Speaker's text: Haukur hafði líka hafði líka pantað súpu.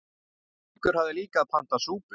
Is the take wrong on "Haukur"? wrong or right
right